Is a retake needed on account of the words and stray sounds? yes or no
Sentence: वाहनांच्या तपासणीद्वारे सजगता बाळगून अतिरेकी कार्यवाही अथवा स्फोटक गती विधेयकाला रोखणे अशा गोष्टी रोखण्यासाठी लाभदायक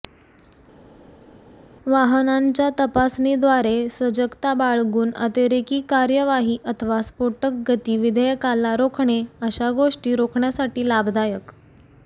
no